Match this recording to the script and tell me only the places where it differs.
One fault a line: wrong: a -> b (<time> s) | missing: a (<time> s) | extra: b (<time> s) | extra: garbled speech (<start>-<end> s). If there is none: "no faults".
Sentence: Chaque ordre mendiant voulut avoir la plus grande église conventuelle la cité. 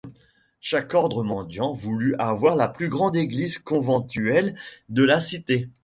extra: de (4.9 s)